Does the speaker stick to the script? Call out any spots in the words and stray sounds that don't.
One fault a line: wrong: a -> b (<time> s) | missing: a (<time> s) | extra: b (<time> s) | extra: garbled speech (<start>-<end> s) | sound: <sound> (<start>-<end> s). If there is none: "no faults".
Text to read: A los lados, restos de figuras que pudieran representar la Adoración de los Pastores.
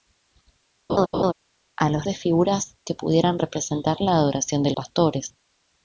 sound: laugh (0.9-1.3 s)
missing: lados restos (2.1 s)
missing: los (4.7 s)